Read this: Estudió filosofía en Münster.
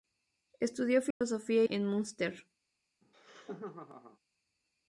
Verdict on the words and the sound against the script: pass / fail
fail